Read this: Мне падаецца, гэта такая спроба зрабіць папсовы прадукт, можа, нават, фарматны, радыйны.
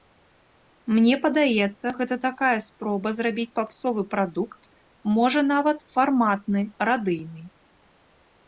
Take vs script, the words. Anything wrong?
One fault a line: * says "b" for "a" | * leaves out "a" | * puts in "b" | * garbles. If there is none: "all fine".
all fine